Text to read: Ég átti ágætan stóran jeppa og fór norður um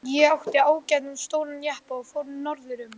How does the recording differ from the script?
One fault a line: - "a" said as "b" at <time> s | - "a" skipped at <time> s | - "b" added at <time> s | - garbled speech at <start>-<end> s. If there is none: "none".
none